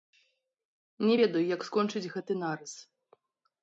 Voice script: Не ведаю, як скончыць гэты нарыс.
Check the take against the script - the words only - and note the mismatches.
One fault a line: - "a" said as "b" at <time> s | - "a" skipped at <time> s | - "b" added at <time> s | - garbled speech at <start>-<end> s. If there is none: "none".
none